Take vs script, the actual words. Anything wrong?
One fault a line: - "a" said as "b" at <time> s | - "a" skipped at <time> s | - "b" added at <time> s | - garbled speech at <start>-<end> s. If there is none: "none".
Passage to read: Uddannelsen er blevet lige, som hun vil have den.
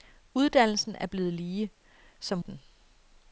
- "hun vil have" skipped at 2.4 s